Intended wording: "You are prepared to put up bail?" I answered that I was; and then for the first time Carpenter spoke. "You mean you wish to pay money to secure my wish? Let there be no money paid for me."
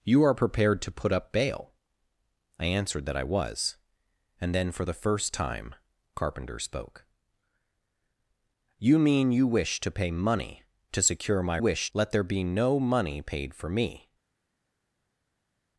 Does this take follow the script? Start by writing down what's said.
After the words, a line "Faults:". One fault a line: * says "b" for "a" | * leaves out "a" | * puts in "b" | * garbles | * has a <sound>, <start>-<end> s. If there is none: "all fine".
"You are prepared to put up bail?" I answered that I was; and then for the first time Carpenter spoke. "You mean you wish to pay money to secure my wish? Let there be no money paid for me."
Faults:
all fine